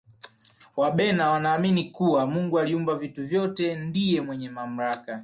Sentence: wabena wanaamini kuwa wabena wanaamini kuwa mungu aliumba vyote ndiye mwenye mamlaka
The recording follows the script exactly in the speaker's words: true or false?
false